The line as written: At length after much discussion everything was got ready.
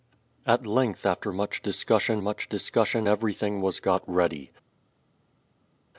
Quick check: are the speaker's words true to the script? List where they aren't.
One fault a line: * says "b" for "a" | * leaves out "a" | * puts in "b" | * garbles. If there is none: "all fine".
* puts in "much discussion"